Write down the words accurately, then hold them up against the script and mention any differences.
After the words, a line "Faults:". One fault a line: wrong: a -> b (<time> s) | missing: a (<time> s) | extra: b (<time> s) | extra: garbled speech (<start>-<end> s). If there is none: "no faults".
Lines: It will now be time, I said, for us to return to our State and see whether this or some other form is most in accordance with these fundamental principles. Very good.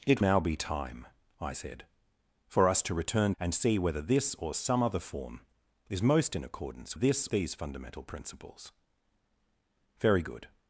It now be time, I said, for us to return and see whether this or some other form is most in accordance this these fundamental principles. Very good.
Faults:
missing: will (0.2 s)
missing: to our State (3.3 s)
wrong: with -> this (6.9 s)